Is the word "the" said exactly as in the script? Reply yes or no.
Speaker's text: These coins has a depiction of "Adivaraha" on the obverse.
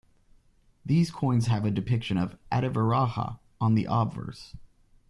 yes